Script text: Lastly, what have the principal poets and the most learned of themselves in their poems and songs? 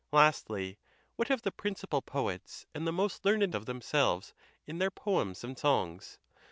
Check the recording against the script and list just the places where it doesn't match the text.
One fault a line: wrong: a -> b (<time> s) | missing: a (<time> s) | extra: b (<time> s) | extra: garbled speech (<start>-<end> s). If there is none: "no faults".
no faults